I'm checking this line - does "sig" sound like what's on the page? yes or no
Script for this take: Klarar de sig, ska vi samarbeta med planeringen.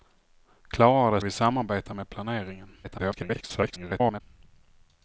no